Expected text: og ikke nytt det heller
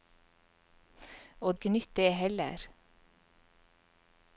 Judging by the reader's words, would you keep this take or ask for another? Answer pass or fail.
pass